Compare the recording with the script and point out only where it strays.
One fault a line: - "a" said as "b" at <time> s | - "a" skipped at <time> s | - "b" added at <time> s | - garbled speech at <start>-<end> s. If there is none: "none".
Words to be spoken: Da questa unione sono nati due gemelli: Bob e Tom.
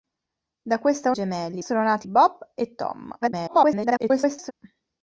- "unione" said as "gemelli" at 1.1 s
- "due gemelli" skipped at 2.1 s
- garbled speech at 3.2-4.5 s